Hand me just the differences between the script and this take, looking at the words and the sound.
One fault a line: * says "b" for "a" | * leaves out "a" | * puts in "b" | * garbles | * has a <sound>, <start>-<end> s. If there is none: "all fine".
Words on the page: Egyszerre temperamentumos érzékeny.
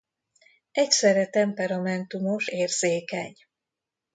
all fine